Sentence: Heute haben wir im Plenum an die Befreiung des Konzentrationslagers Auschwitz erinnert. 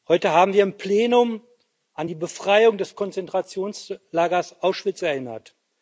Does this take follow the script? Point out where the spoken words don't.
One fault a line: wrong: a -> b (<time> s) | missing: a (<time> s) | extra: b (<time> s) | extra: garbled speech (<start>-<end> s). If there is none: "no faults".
no faults